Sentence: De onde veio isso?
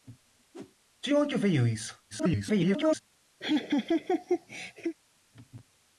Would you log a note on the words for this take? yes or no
yes